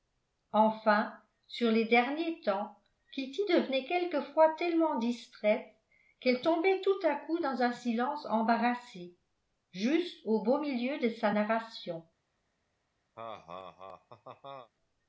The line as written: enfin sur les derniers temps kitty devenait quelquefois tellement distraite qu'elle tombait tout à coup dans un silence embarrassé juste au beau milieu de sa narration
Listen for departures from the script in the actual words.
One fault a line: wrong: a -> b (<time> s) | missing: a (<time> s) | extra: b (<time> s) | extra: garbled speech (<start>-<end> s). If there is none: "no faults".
no faults